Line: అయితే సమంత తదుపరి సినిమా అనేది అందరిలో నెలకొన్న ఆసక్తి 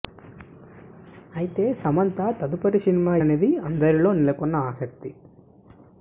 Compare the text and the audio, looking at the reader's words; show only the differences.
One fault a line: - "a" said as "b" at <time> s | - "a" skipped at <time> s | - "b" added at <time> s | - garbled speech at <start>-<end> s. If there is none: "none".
none